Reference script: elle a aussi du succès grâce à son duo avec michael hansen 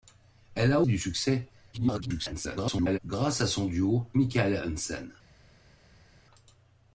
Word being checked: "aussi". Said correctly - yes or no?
no